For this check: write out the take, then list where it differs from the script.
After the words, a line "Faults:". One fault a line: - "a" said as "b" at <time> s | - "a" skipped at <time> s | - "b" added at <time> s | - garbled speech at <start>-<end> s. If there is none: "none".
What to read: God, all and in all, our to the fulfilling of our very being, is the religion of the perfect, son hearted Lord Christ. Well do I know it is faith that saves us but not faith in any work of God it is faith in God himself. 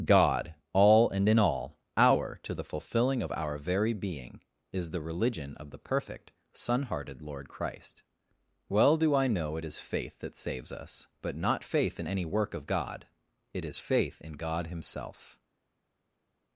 God, all and in all, our to the fulfilling of our very being, is the religion of the perfect, son hearted Lord Christ. Well do I know it is faith that saves us but not faith in any work of God it is faith in God himself.
Faults:
none